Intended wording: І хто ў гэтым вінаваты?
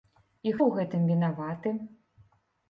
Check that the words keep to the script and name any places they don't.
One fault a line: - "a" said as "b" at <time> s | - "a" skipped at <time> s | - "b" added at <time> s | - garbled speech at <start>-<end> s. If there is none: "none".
- "хто" skipped at 0.5 s